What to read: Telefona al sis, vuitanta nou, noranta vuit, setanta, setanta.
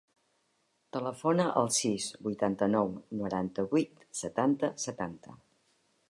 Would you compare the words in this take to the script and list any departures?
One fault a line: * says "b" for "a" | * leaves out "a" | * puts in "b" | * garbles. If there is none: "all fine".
all fine